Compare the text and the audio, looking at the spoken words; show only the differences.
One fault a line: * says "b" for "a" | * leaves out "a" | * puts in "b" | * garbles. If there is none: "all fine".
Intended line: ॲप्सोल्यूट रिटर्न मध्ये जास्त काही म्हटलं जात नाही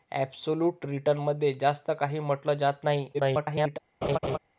* garbles